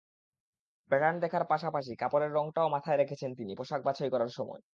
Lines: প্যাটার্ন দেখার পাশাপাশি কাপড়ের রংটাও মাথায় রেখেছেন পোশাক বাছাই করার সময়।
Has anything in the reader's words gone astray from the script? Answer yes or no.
yes